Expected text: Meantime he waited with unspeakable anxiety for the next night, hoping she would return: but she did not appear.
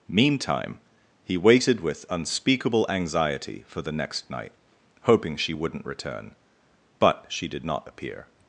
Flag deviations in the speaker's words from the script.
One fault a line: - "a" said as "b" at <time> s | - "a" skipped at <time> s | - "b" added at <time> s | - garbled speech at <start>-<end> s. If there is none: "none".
- "would" said as "wouldn't" at 5.5 s